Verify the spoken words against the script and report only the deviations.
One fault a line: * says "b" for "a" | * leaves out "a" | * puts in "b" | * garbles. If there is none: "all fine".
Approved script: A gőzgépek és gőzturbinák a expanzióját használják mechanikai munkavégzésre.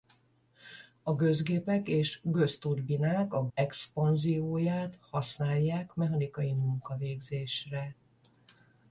all fine